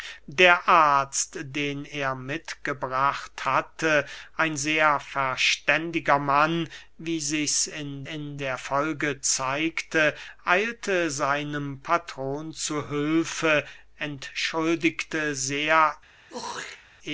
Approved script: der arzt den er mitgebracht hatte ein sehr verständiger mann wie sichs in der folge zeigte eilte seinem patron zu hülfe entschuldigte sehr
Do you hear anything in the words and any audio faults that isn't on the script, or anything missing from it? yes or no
yes